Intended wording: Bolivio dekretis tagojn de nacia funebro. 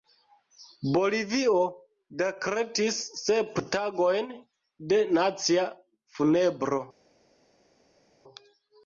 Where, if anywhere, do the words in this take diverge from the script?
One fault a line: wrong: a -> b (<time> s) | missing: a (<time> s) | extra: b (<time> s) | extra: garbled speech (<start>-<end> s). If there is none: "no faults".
extra: sep (3.2 s)